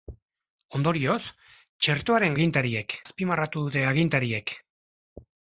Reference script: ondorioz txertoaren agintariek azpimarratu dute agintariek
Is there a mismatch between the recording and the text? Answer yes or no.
no